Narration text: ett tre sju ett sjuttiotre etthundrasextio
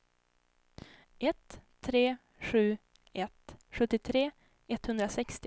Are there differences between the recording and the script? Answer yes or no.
no